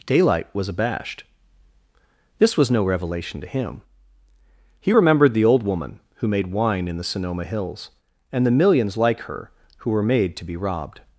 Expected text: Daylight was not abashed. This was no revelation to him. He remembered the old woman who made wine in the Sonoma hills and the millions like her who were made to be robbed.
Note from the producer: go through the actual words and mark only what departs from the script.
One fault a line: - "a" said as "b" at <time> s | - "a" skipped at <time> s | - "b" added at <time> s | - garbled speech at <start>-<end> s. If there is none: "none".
- "not" skipped at 0.7 s